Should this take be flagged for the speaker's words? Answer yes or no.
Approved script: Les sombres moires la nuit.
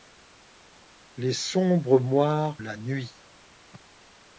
no